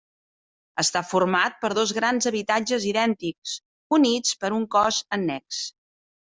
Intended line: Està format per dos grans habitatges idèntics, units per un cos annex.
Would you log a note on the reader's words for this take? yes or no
no